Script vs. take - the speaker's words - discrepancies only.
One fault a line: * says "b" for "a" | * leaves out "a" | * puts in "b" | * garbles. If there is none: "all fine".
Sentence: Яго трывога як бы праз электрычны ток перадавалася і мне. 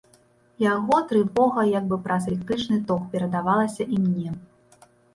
all fine